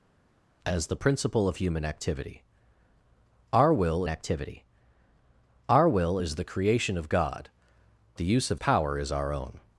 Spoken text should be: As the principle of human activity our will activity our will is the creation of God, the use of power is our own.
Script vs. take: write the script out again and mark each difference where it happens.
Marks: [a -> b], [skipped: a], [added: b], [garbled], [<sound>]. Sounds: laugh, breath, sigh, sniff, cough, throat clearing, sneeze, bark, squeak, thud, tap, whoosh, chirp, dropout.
As the principle of human activity our will activity our will is the creation of God, the use of power is our own.